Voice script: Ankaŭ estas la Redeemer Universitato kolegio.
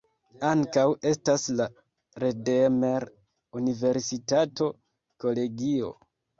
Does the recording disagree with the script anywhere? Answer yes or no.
no